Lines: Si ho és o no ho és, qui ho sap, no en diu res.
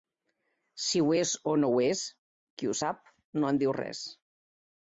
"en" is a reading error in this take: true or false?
false